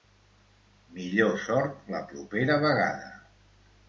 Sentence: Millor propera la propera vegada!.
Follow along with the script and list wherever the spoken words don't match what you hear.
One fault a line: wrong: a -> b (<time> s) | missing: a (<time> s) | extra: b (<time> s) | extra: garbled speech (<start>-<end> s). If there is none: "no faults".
wrong: propera -> sort (1.4 s)